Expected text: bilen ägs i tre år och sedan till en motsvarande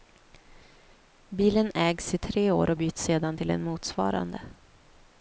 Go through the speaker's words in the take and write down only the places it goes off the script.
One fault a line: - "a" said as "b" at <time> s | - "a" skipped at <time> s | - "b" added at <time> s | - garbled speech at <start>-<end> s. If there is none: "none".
- "byts" added at 2.7 s